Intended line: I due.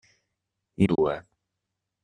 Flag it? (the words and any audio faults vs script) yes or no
yes